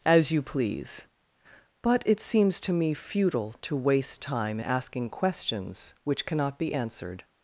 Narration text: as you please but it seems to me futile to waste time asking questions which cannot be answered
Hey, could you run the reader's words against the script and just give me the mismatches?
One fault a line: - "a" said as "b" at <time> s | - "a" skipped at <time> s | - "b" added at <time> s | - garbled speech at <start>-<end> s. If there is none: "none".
none